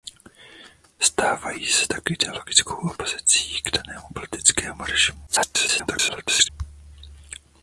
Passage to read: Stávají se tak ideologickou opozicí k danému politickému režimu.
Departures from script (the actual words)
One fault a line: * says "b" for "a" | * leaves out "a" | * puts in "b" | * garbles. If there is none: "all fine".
* garbles